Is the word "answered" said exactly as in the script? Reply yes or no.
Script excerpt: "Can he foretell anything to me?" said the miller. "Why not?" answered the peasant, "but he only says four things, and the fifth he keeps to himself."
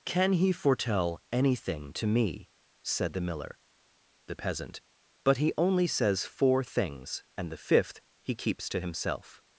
no